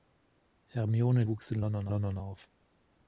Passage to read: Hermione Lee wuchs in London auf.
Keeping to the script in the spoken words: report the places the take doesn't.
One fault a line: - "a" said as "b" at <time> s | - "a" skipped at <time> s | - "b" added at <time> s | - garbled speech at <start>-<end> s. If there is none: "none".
- "Lee" skipped at 1.2 s
- "London" added at 1.9 s